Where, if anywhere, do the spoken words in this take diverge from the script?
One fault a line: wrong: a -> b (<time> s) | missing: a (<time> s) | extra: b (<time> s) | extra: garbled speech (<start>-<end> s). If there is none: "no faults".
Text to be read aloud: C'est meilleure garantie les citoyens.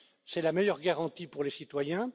extra: la (0.4 s)
extra: pour (1.3 s)